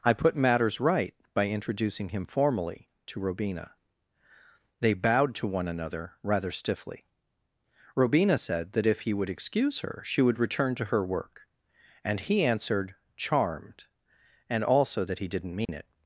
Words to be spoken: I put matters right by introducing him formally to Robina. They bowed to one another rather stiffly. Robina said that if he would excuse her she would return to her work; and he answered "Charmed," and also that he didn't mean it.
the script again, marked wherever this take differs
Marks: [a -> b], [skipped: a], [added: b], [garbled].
I put matters right by introducing him formally to Robina. They bowed to one another rather stiffly. Robina said that if he would excuse her she would return to her work; and he answered "Charmed," and also that he didn't mean it.